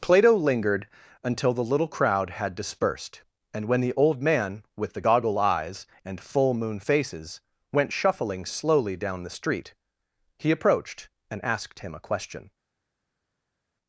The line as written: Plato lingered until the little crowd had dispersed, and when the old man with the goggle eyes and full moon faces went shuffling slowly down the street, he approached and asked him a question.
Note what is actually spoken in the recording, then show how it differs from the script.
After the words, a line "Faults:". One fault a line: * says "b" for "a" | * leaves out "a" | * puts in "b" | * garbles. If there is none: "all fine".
Plato lingered until the little crowd had dispersed, and when the old man with the goggle eyes and full moon faces went shuffling slowly down the street, he approached and asked him a question.
Faults:
all fine